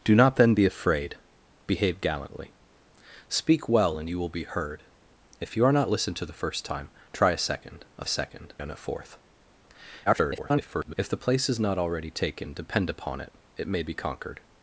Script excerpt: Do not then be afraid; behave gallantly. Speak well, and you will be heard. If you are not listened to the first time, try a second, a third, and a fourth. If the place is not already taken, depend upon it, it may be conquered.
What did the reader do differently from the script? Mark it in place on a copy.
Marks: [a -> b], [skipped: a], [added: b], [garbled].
Do not then be afraid; behave gallantly. Speak well, and you will be heard. If you are not listened to the first time, try a second, a [third, -> second] and a fourth. [garbled] If the place is not already taken, depend upon it, it may be conquered.